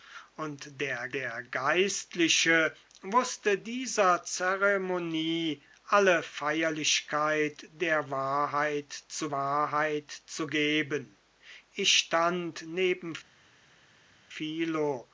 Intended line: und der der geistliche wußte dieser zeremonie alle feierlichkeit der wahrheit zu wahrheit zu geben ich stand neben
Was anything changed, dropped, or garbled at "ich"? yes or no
no